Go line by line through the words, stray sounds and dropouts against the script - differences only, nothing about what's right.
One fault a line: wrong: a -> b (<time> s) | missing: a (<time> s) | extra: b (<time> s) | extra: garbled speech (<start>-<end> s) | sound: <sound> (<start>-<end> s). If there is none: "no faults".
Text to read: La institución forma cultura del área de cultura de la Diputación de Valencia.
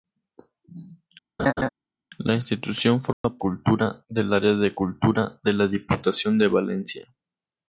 sound: laugh (1.4-1.7 s)
sound: dropout (3.1-3.2 s)